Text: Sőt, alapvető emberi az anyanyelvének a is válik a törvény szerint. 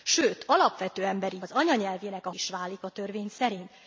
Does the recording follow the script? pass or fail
pass